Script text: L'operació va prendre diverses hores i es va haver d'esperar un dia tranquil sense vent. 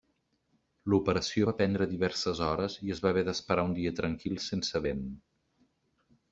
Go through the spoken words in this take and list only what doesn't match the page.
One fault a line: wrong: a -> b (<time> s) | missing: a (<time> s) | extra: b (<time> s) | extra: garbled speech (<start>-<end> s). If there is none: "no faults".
no faults